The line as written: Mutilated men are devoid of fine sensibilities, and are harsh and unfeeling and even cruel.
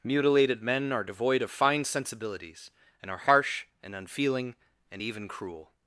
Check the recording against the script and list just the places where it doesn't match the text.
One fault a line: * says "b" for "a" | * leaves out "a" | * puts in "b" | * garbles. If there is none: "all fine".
all fine